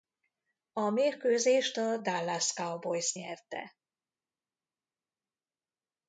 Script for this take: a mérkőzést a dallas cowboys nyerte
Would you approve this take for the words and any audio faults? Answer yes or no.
yes